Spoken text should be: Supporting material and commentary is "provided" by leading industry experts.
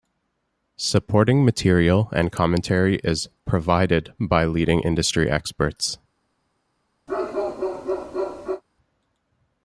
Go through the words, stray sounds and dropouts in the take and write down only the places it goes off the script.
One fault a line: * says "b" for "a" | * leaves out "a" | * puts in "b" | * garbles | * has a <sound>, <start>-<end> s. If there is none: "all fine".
* has a bark, 7.1-8.6 s